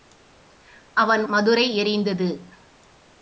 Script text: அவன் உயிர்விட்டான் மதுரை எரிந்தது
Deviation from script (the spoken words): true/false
true